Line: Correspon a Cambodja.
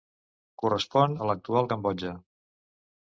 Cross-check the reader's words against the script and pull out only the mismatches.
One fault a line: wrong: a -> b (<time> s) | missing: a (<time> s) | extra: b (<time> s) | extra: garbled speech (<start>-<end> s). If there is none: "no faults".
extra: l'actual (1.3 s)